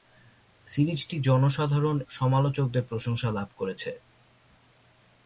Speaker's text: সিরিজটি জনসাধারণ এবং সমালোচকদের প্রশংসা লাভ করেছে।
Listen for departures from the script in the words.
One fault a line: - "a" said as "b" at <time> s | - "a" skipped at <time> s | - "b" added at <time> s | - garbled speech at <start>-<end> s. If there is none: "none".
- "এবং" skipped at 2.0 s